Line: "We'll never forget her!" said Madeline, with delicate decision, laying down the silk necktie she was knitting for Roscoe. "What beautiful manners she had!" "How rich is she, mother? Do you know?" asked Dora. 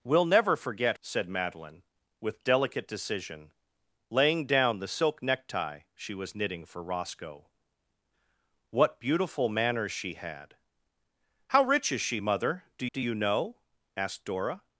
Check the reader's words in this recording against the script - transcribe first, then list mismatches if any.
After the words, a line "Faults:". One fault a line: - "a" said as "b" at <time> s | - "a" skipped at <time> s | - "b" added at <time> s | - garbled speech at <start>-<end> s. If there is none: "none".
"We'll never forget!" said Madeline, with delicate decision, laying down the silk necktie she was knitting for Roscoe. "What beautiful manners she had!" "How rich is she, mother? Do do you know?" asked Dora.
Faults:
- "her" skipped at 1.0 s
- "do" added at 12.9 s